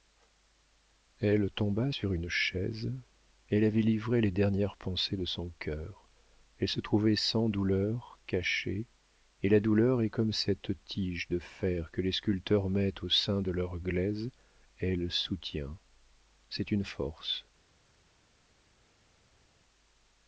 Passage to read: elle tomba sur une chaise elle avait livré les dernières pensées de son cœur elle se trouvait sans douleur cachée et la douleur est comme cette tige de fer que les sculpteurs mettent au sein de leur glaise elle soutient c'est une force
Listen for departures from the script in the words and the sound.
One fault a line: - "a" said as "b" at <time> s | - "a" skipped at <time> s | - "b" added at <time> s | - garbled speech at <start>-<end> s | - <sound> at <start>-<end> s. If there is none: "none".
none